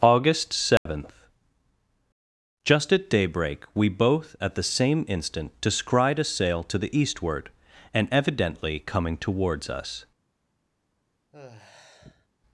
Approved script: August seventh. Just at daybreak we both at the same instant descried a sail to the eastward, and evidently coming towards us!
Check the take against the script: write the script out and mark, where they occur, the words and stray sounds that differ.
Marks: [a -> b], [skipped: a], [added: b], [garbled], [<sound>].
August seventh. [dropout] Just at daybreak we both at the same instant descried a sail to the eastward, and evidently coming towards us! [sigh]